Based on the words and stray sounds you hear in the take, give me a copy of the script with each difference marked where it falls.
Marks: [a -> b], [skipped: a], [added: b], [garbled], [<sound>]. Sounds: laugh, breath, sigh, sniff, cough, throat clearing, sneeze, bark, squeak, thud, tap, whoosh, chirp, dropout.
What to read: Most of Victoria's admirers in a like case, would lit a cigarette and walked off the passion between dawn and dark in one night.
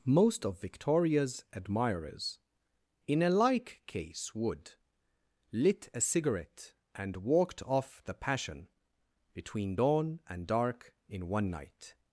Most of Victoria's admirers in a like case, would lit a cigarette and walked off the passion between dawn and dark in one night.